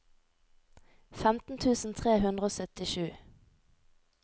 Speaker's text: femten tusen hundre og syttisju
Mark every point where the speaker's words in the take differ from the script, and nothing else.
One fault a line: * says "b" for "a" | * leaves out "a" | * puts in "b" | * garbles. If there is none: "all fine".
* puts in "tre"